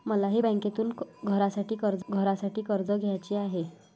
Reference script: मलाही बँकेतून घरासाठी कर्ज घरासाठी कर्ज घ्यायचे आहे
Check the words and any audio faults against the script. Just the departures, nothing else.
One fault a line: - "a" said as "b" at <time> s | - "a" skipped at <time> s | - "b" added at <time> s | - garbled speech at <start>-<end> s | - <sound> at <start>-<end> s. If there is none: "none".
none